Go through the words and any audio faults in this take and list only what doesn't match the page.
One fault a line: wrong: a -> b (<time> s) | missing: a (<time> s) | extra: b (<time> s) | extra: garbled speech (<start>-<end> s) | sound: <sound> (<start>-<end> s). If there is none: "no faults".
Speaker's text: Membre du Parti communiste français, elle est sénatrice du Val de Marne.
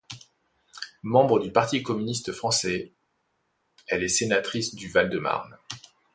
no faults